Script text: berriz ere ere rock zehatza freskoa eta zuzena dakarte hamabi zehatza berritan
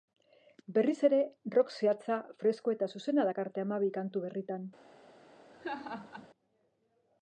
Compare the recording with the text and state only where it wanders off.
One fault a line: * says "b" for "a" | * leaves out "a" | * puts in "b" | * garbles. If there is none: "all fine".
* leaves out "ere"
* says "kantu" for "zehatza"